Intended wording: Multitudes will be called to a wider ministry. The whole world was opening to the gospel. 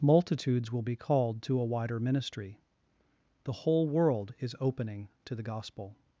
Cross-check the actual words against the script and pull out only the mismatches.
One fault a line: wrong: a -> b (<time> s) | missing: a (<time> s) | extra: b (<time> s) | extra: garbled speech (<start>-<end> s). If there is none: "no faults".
wrong: was -> is (4.4 s)